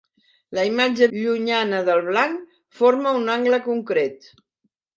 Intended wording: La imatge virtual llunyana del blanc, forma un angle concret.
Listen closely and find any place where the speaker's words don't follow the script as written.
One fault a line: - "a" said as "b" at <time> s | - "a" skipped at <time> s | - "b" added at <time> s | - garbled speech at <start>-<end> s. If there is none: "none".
- "virtual" skipped at 1.1 s